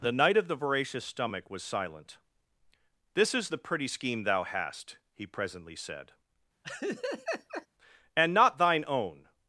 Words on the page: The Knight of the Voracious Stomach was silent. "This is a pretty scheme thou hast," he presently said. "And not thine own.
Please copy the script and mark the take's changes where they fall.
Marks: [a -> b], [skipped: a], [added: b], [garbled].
The Knight of the Voracious Stomach was silent. "This is [a -> the] pretty scheme thou hast," he presently said. "And not thine own.